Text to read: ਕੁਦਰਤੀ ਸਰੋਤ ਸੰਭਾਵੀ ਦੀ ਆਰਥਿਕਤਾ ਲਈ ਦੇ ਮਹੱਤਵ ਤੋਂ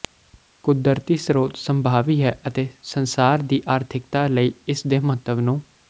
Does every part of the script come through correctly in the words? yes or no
no